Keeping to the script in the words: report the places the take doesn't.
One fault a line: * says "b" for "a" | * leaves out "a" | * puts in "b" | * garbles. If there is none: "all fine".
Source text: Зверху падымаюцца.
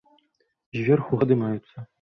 all fine